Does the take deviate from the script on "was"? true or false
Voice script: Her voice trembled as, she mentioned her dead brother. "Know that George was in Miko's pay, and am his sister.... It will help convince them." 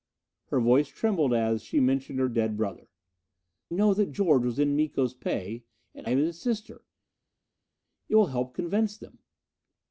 false